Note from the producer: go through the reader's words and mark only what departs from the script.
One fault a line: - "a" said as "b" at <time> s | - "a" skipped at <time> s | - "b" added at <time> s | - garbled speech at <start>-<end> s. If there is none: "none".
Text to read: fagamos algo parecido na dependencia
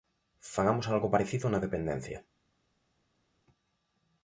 none